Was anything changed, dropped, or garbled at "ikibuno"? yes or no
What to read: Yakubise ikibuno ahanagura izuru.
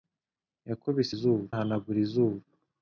yes